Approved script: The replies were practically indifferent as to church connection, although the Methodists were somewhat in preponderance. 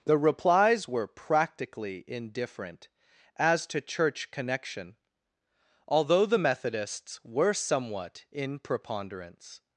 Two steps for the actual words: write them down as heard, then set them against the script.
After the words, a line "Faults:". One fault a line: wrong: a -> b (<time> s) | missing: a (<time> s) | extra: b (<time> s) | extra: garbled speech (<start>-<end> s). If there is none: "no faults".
The replies were practically indifferent as to church connection, although the Methodists were somewhat in preponderance.
Faults:
no faults